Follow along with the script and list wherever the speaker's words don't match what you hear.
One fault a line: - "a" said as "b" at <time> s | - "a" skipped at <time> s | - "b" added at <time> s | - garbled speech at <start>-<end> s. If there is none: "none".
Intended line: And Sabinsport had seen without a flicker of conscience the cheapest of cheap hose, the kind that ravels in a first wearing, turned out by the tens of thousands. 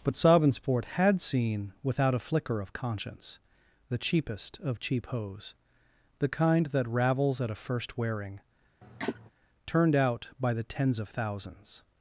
- "And" said as "But" at 0.0 s
- "in" said as "at" at 7.4 s